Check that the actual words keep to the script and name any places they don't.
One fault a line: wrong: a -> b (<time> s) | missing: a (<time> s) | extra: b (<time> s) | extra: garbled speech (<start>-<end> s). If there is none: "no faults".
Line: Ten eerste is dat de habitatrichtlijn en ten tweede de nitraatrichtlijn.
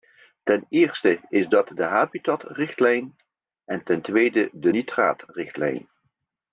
no faults